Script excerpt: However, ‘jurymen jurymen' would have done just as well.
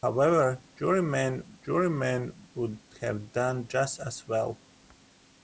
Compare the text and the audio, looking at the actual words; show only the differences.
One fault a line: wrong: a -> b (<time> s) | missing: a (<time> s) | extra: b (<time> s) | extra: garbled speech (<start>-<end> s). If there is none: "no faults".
no faults